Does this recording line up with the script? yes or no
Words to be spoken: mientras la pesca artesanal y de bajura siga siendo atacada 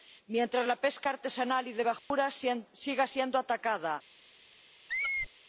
yes